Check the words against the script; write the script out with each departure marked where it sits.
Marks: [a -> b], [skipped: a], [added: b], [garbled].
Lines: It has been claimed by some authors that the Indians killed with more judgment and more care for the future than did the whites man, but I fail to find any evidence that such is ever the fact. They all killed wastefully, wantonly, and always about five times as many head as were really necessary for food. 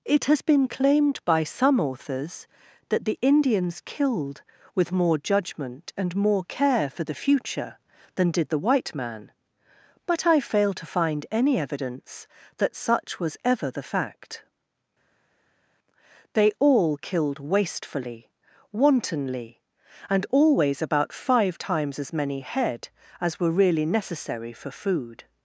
It has been claimed by some authors that the Indians killed with more judgment and more care for the future than did the [whites -> white] man, but I fail to find any evidence that such [is -> was] ever the fact. They all killed wastefully, wantonly, and always about five times as many head as were really necessary for food.